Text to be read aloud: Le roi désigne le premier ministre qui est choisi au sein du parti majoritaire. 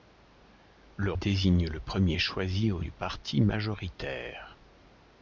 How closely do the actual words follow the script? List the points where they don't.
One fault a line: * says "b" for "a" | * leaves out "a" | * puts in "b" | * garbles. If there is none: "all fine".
* leaves out "roi"
* leaves out "ministre qui"
* leaves out "sein"